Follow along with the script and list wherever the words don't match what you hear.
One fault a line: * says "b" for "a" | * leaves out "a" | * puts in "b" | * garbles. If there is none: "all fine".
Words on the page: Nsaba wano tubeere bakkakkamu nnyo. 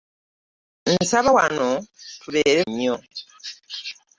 * leaves out "bakkakkamu"